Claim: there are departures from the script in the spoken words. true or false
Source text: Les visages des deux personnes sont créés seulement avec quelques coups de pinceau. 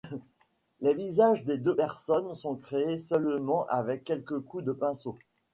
false